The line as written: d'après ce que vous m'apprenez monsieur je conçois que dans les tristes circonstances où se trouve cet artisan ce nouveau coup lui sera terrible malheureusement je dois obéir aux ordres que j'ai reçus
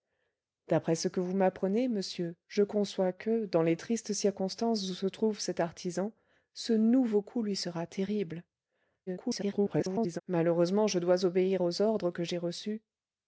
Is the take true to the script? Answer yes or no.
no